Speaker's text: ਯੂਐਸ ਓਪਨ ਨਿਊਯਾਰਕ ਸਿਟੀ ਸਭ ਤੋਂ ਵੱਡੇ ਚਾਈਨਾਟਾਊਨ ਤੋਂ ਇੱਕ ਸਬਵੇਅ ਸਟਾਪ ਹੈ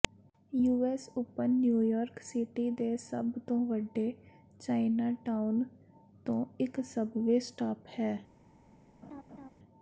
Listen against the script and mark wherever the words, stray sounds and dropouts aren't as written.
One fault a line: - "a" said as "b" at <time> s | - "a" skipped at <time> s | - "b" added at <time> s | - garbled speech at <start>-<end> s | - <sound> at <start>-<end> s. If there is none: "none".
- "ਦੇ" added at 2.7 s
- laugh at 9.0-9.5 s